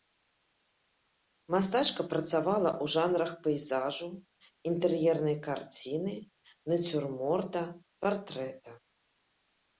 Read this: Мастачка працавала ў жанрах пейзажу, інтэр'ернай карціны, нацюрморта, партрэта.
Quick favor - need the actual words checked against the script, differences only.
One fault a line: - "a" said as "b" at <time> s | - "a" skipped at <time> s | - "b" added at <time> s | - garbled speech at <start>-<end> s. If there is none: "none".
none